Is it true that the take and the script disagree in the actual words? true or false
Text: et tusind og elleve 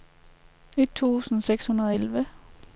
true